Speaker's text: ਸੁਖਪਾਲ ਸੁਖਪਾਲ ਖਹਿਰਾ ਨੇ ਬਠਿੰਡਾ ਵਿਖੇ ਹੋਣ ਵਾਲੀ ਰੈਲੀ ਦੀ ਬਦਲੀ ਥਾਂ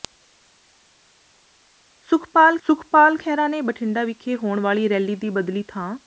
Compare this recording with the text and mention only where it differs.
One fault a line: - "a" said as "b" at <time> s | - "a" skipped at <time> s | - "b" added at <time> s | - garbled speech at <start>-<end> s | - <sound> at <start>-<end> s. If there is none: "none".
none